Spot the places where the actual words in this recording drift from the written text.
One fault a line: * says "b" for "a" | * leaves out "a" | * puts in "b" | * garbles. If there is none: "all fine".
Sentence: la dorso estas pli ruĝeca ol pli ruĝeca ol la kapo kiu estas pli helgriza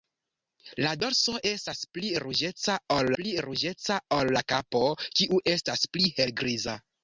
all fine